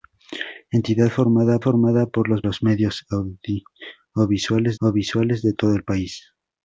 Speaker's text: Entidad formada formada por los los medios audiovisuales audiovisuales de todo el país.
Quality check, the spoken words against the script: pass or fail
pass